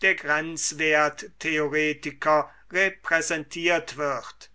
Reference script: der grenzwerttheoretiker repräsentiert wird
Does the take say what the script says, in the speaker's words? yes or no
yes